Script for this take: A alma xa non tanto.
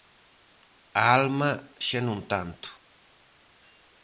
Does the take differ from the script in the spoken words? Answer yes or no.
no